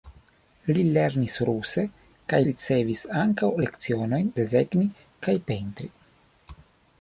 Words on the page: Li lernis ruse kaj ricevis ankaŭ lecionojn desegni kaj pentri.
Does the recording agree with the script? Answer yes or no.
yes